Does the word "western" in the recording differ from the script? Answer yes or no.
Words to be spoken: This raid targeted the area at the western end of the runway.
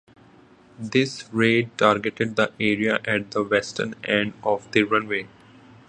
no